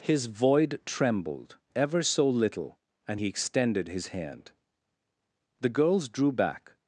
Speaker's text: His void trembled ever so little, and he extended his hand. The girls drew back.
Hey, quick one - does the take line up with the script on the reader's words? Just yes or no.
yes